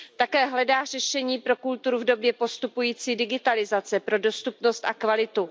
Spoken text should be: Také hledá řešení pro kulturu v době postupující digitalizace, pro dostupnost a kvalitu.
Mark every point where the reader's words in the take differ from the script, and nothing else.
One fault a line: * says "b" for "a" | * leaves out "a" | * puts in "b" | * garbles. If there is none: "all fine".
all fine